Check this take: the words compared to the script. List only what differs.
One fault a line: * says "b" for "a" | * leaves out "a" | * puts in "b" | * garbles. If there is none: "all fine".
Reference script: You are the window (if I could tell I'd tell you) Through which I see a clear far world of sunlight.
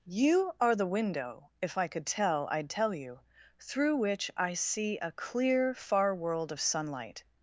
all fine